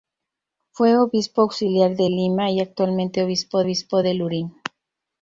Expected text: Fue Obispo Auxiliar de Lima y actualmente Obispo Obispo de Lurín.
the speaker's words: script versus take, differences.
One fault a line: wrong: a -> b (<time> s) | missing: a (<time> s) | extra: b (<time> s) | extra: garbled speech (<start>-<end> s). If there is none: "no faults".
no faults